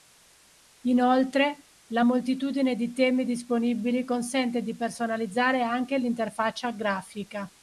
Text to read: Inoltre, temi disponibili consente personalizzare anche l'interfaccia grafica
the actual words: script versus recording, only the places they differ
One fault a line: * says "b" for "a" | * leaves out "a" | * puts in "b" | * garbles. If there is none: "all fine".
* puts in "la moltitudine di"
* puts in "di"